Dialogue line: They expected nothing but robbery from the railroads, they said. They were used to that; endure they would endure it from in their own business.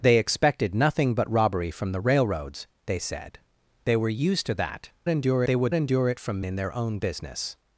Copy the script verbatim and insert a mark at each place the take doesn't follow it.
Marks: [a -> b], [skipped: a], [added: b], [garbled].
They expected nothing but robbery from the railroads, they said. They were used to that; endure they would endure it from in their own business.